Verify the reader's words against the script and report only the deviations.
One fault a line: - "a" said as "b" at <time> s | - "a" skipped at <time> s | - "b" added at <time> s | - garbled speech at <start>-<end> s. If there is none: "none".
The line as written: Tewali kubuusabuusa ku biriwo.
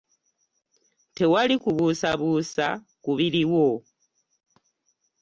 none